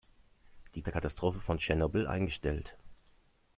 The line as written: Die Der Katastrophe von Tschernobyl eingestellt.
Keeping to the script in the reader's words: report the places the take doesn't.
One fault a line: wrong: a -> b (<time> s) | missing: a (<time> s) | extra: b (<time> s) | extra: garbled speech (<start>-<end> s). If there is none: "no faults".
no faults